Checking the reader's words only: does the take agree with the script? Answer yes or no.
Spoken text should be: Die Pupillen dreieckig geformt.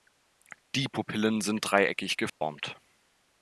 no